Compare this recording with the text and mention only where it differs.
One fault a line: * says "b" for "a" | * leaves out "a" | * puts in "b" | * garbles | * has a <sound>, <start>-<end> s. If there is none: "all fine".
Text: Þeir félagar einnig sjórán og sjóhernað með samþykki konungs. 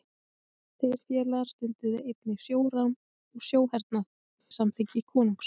* puts in "stunduðu"
* has a dropout, 4.4-4.5 s